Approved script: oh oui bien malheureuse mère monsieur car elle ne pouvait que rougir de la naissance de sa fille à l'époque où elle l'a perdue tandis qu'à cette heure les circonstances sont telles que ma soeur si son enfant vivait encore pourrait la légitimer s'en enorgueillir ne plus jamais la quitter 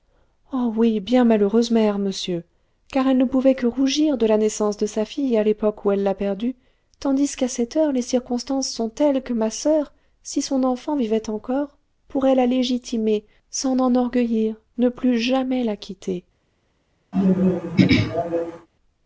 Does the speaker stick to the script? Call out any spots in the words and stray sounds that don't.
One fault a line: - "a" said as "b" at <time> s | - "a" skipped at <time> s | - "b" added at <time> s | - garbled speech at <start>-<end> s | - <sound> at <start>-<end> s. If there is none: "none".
- throat clearing at 17.1-18.7 s